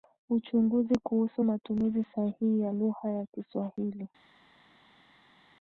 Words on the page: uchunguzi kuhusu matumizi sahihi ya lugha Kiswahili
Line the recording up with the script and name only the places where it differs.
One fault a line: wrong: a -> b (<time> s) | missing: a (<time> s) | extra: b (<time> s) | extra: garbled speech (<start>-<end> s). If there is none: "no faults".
extra: ya (3.1 s)